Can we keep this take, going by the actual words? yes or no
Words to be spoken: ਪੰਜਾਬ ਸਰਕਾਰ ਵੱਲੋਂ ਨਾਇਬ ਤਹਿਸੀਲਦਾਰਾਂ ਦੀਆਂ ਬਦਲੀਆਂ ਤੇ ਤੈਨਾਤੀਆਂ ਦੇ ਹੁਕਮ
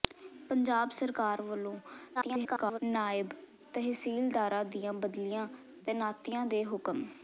no